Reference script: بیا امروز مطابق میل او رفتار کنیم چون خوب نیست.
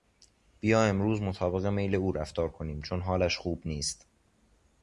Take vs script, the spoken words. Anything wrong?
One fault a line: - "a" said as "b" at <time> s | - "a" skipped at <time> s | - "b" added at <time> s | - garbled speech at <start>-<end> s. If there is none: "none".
- "حالش" added at 3.0 s